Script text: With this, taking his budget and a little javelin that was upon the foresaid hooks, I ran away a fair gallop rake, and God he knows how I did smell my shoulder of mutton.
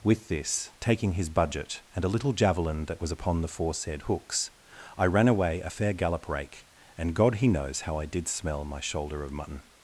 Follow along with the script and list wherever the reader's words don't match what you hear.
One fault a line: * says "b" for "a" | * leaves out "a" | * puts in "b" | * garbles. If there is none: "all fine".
all fine